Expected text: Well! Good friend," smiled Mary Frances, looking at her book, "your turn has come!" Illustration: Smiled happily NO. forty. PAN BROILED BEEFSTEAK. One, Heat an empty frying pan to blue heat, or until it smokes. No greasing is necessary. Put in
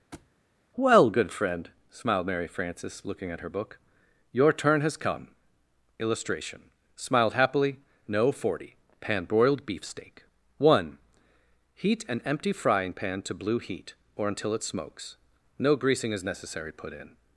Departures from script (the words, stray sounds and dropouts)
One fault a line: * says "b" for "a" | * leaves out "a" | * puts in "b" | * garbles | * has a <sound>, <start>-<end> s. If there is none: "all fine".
* has a thud, 0.1-0.3 s